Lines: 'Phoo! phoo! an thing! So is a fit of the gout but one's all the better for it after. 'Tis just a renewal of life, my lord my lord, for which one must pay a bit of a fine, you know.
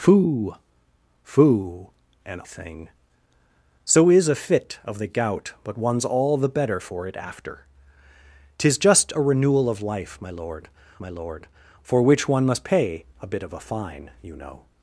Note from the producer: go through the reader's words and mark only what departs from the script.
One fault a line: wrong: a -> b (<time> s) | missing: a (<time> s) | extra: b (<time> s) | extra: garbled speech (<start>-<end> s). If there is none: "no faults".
no faults